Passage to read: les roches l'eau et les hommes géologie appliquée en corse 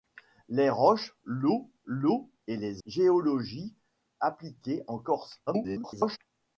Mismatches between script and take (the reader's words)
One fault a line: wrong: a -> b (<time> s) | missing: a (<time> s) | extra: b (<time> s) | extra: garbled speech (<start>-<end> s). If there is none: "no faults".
extra: l'eau (1.9 s)
missing: hommes (2.8 s)
extra: garbled speech (5.5-6.2 s)